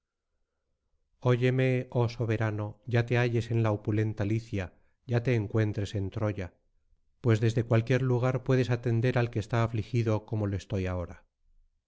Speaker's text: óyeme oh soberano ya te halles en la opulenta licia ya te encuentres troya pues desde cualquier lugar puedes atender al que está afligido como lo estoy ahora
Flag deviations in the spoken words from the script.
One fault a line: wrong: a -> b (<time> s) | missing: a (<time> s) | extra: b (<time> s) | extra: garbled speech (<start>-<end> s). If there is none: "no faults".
extra: en (5.9 s)